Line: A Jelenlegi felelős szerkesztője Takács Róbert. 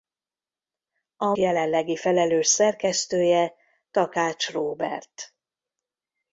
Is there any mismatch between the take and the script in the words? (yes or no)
no